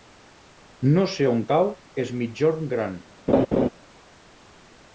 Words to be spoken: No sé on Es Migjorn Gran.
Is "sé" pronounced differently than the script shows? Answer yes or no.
no